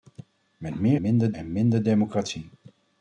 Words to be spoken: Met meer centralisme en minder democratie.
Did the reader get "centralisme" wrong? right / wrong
wrong